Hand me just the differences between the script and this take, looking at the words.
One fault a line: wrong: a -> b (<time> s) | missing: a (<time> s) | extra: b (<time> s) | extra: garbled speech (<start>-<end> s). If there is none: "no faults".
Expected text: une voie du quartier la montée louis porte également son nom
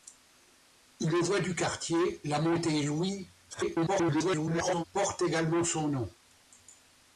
extra: garbled speech (3.5-4.8 s)